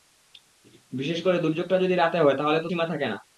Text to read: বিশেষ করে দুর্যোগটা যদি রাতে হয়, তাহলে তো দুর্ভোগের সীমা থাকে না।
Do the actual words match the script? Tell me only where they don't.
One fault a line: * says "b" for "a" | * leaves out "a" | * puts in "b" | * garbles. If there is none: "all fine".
* leaves out "দুর্ভোগের"